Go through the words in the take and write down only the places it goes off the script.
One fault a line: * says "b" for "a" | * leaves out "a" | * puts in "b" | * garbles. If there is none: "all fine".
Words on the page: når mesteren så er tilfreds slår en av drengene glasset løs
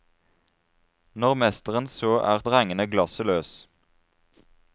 * leaves out "tilfreds slår en"